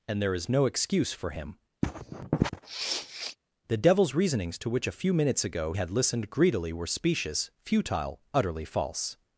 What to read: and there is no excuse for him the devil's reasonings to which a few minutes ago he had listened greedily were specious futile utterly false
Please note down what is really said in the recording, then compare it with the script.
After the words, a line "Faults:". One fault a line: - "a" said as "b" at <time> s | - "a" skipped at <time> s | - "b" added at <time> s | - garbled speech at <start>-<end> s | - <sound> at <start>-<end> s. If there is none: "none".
and there is no excuse for him the devil's reasonings to which a few minutes ago had listened greedily were specious futile utterly false
Faults:
- sniff at 1.8-3.4 s
- "he" skipped at 5.7 s